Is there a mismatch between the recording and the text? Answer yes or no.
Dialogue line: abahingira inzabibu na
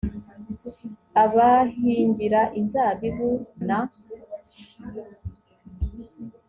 no